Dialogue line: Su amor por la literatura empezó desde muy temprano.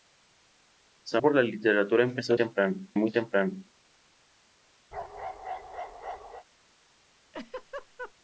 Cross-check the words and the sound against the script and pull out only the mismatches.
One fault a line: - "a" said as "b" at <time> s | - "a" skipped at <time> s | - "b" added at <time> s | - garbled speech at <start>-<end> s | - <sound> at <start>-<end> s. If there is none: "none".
- "amor" skipped at 1.2 s
- "desde" said as "temprano" at 2.3 s
- bark at 4.9-6.4 s
- laugh at 7.3-8.1 s